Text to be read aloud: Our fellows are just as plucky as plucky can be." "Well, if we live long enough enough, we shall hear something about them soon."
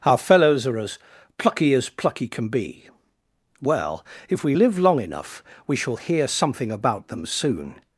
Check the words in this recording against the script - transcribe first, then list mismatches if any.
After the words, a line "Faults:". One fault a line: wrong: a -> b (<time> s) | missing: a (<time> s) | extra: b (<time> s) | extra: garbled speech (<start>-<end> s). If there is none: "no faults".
Our fellows are as plucky as plucky can be." "Well, if we live long enough, we shall hear something about them soon."
Faults:
missing: just (0.8 s)
missing: enough (5.4 s)